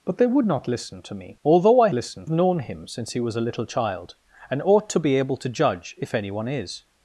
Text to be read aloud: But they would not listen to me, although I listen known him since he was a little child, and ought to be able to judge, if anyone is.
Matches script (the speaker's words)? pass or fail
pass